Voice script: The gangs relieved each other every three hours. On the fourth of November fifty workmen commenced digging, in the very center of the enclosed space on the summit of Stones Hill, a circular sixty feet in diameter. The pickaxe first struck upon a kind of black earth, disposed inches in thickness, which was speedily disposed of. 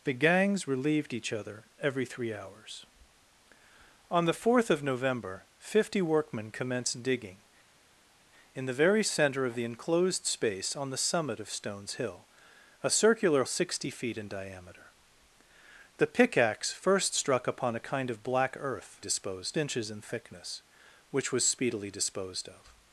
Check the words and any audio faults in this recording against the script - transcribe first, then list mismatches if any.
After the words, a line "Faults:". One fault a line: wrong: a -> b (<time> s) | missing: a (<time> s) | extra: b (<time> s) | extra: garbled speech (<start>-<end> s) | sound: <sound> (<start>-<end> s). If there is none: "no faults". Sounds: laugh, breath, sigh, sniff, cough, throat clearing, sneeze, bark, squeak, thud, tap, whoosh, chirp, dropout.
The gangs relieved each other every three hours. On the fourth of November fifty workmen commenced digging, in the very center of the enclosed space on the summit of Stones Hill, a circular sixty feet in diameter. The pickaxe first struck upon a kind of black earth, disposed inches in thickness, which was speedily disposed of.
Faults:
no faults